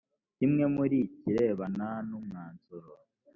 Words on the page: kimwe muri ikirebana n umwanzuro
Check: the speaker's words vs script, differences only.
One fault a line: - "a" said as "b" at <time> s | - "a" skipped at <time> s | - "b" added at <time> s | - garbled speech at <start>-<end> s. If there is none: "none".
none